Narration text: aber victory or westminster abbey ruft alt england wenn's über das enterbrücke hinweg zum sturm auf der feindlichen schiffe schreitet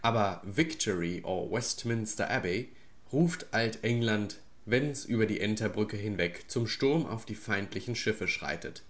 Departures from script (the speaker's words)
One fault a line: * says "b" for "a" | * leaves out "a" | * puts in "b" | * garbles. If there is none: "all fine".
* says "die" for "das"
* says "die" for "der"